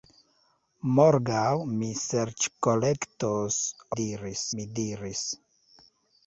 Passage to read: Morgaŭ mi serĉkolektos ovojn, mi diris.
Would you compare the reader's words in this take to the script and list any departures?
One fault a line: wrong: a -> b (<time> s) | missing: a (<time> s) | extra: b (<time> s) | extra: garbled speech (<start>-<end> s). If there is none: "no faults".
wrong: ovojn -> diris (4.0 s)